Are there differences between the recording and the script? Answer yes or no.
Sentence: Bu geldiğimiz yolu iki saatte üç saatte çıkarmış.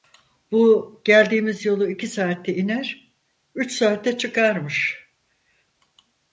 yes